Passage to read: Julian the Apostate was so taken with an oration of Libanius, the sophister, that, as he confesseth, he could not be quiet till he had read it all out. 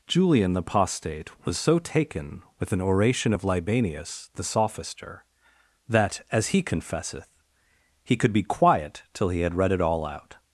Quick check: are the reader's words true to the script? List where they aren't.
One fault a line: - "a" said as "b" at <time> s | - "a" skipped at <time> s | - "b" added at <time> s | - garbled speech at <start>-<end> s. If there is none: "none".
- "not" skipped at 8.3 s